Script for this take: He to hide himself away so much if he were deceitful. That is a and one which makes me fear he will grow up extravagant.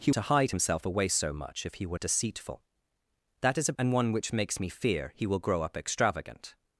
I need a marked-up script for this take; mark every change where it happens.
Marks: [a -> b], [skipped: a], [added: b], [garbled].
He to hide himself away so much if he were deceitful. That is a and one which makes me fear he will grow up extravagant.